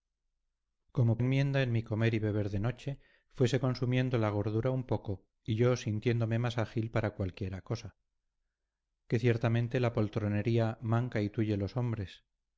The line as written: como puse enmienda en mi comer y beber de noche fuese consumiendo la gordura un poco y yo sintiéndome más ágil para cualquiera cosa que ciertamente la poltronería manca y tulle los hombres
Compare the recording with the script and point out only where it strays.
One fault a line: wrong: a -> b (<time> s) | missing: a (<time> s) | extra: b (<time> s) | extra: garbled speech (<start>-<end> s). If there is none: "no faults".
missing: puse (1.2 s)